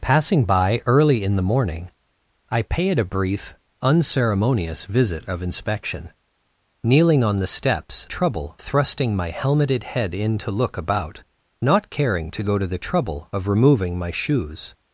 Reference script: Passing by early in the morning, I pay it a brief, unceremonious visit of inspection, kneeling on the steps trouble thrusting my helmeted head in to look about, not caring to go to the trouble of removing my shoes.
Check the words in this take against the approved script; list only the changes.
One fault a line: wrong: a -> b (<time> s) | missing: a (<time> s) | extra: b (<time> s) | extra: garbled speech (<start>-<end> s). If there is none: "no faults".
no faults